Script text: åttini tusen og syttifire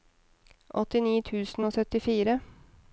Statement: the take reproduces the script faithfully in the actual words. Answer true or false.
true